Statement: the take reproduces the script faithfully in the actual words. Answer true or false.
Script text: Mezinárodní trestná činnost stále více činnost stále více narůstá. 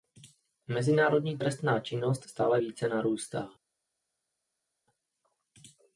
false